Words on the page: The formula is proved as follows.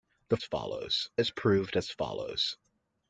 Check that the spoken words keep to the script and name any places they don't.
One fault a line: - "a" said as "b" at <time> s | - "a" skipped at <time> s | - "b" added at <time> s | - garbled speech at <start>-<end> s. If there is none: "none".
- "formula" said as "follows" at 0.4 s